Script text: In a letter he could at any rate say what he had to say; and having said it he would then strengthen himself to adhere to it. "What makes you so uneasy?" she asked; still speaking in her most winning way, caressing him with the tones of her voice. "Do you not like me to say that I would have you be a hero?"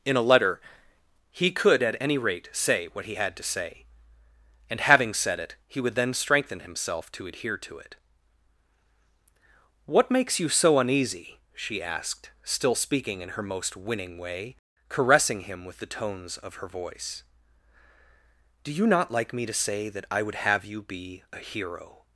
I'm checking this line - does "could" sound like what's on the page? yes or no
yes